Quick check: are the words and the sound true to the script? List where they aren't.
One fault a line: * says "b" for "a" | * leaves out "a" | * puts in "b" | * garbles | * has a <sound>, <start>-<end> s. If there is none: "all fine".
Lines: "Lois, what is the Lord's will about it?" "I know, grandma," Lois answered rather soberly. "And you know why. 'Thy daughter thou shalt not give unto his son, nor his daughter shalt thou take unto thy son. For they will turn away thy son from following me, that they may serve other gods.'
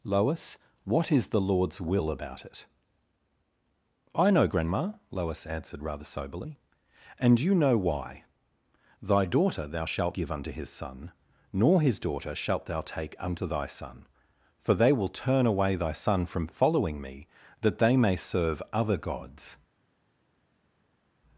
* leaves out "not"